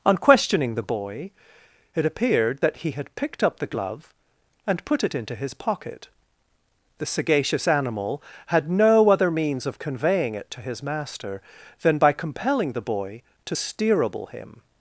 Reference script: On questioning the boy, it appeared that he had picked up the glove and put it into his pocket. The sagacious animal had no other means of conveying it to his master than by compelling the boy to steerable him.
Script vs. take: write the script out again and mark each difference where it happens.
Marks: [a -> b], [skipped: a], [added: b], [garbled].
On questioning the boy, it appeared that he had picked up the glove and put it into his pocket. The sagacious animal had no other means of conveying it to his master than by compelling the boy to steerable him.